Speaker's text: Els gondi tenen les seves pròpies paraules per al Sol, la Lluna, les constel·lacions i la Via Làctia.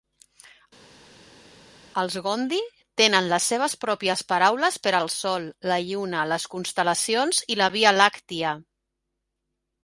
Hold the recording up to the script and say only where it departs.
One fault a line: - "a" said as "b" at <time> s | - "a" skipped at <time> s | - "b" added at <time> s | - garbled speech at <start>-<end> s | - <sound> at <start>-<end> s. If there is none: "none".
none